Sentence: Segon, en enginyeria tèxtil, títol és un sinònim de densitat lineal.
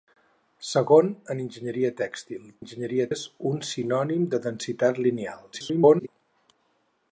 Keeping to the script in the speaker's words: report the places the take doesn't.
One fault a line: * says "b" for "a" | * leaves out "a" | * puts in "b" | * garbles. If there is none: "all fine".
* says "enginyeria" for "títol"
* garbles